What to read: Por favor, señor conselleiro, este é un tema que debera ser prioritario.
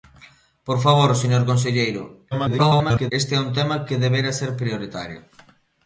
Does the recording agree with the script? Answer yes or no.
no